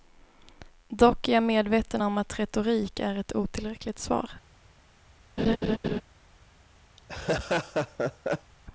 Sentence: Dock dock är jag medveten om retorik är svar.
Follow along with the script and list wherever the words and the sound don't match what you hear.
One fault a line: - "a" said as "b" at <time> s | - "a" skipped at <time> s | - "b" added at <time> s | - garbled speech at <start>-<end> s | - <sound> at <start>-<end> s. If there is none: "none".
- "dock" skipped at 1.3 s
- "att" added at 2.2 s
- "ett otillräckligt" added at 3.1 s
- laugh at 5.4-6.0 s
- laugh at 7.0-8.5 s